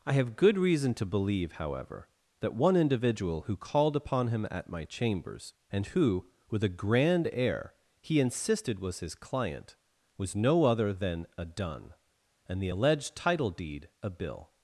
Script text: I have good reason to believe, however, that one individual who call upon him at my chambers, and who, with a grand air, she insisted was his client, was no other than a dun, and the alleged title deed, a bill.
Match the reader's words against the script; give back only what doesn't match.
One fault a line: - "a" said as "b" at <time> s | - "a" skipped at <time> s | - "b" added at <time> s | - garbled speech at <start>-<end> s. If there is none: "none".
- "call" said as "called" at 3.5 s
- "she" said as "he" at 8.0 s